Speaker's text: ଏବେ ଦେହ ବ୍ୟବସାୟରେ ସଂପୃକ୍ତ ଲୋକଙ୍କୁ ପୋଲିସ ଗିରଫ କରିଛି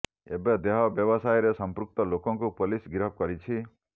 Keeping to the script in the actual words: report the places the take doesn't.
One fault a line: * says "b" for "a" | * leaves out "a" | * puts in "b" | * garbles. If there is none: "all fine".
all fine